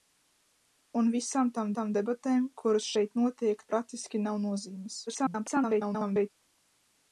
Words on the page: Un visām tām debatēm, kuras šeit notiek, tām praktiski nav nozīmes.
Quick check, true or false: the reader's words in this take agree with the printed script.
false